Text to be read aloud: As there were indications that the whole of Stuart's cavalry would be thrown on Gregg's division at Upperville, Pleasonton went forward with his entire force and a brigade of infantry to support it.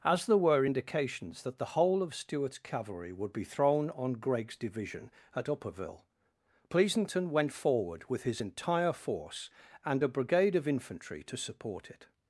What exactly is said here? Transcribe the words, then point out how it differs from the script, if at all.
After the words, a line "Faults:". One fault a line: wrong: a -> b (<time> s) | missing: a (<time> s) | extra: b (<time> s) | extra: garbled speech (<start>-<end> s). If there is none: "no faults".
As there were indications that the whole of Stuart's cavalry would be thrown on Gregg's division at Upperville, Pleasonton went forward with his entire force and a brigade of infantry to support it.
Faults:
no faults